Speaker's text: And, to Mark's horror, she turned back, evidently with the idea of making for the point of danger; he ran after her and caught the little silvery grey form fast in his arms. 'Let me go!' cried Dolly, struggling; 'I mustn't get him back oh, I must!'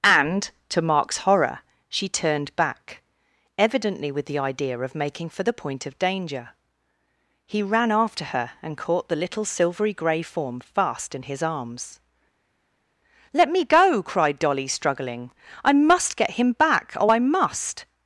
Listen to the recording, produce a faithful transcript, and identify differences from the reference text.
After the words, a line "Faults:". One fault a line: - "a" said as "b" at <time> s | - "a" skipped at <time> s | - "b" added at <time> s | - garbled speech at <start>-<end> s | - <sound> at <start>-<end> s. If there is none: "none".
And, to Mark's horror, she turned back, evidently with the idea of making for the point of danger; he ran after her and caught the little silvery grey form fast in his arms. 'Let me go!' cried Dolly, struggling; 'I must get him back oh, I must!'
Faults:
- "mustn't" said as "must" at 15.7 s